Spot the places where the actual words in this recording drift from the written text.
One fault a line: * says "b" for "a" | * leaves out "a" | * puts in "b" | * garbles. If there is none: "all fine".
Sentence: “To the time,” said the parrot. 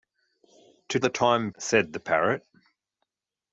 all fine